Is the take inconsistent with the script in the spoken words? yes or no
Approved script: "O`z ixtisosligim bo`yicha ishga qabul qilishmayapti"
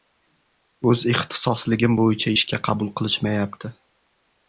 no